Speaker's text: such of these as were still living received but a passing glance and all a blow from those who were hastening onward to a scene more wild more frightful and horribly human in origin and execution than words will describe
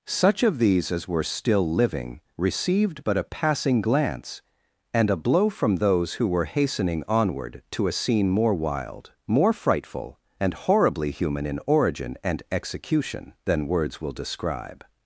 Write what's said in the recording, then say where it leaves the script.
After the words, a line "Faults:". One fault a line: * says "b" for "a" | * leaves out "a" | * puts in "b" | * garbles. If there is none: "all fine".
such of these as were still living received but a passing glance and a blow from those who were hastening onward to a scene more wild more frightful and horribly human in origin and execution than words will describe
Faults:
* leaves out "all"